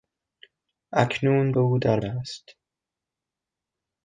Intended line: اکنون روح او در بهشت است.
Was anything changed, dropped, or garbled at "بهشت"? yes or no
yes